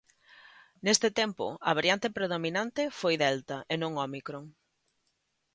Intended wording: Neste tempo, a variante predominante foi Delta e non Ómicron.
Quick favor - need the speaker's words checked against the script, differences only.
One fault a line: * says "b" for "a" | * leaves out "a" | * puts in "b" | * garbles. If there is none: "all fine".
all fine